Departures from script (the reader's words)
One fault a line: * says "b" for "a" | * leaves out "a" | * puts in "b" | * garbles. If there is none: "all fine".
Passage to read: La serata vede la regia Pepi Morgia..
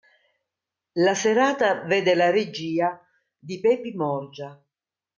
* puts in "di"